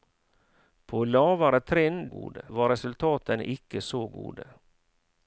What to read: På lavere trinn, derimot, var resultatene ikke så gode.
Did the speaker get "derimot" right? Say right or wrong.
wrong